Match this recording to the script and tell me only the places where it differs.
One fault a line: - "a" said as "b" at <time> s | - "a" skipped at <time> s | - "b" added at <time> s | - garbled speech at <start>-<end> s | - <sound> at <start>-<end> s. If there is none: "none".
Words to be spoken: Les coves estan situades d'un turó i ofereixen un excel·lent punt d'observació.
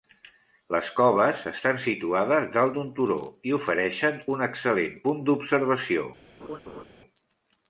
- "dalt" added at 2.5 s
- laugh at 6.4-6.8 s